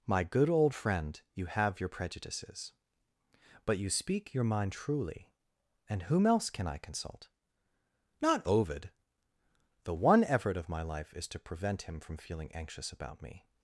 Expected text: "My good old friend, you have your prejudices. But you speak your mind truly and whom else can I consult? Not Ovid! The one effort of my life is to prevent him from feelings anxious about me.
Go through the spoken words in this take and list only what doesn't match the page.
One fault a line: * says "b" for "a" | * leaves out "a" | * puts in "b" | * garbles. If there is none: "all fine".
* says "feeling" for "feelings"